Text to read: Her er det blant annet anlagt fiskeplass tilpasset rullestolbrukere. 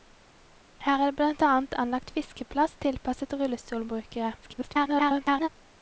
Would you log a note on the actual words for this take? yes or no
yes